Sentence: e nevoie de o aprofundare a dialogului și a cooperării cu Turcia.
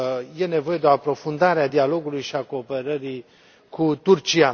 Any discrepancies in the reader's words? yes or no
no